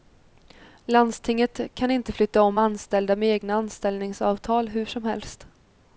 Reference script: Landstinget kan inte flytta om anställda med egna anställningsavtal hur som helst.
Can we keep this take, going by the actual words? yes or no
yes